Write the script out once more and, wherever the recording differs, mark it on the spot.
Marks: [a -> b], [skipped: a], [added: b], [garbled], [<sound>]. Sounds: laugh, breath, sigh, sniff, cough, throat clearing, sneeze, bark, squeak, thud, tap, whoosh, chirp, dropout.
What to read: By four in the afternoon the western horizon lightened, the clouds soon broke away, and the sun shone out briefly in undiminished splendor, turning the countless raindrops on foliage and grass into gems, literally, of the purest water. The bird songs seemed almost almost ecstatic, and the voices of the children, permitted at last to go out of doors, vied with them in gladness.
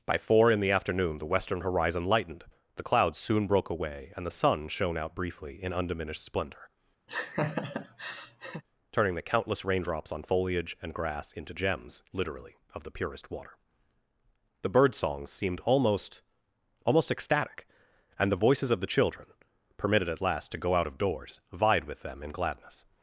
By four in the afternoon the western horizon lightened, the clouds soon broke away, and the sun shone out briefly in undiminished splendor, [laugh] turning the countless raindrops on foliage and grass into gems, literally, of the purest water. The bird songs seemed almost almost ecstatic, and the voices of the children, permitted at last to go out of doors, vied with them in gladness.